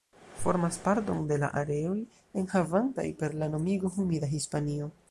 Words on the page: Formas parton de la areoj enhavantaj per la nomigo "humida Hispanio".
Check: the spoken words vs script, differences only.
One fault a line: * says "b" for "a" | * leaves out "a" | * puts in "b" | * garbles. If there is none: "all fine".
all fine